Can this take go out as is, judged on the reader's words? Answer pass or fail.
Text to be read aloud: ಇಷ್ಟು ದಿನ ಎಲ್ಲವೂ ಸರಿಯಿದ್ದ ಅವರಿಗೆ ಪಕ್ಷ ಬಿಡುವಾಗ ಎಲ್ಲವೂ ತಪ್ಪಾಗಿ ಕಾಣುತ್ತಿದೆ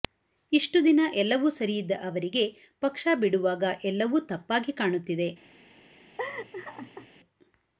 pass